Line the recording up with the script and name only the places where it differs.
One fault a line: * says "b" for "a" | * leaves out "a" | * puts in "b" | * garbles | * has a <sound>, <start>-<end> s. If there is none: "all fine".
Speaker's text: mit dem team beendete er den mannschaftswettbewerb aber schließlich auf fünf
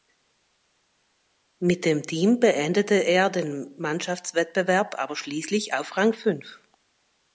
* puts in "rang"